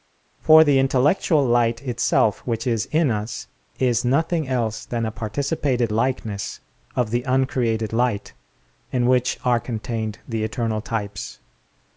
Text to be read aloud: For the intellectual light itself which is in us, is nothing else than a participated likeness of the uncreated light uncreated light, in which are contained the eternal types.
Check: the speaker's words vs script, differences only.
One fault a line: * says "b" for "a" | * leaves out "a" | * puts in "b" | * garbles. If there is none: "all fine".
* leaves out "uncreated light"